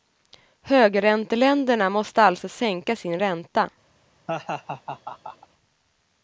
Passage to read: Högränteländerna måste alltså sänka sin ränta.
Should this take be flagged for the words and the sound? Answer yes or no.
yes